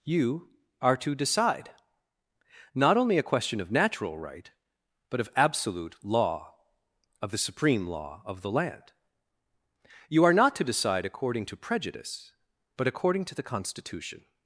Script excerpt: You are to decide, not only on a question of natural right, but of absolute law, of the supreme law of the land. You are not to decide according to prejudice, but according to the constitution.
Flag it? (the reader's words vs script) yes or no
yes